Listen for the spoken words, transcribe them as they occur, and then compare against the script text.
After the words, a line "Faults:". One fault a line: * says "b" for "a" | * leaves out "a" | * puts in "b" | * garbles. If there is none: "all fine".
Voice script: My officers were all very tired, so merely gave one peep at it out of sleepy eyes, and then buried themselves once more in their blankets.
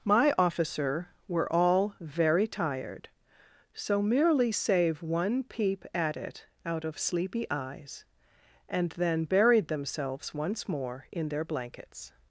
My officer were all very tired, so merely save one peep at it out of sleepy eyes, and then buried themselves once more in their blankets.
Faults:
* says "officer" for "officers"
* says "save" for "gave"